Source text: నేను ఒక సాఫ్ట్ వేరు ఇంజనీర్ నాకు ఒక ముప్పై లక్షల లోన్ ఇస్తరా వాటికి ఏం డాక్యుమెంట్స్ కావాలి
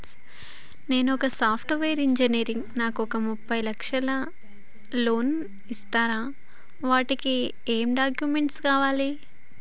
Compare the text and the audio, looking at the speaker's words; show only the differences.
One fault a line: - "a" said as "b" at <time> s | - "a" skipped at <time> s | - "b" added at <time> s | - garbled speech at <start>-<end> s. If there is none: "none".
none